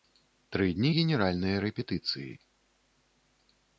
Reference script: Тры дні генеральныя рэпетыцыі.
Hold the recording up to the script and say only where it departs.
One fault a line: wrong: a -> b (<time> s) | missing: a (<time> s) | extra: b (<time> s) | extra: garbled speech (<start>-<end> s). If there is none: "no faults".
no faults